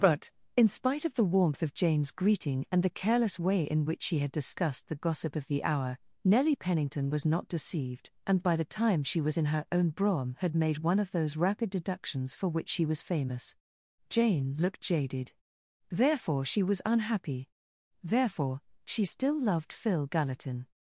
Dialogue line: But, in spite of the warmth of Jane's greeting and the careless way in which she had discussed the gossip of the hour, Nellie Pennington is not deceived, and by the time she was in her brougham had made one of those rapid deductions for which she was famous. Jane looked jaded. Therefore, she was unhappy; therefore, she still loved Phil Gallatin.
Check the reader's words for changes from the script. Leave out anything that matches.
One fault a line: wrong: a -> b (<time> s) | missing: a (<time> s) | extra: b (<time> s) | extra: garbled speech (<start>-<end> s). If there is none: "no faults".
wrong: is -> was (7.1 s)
extra: own (9.7 s)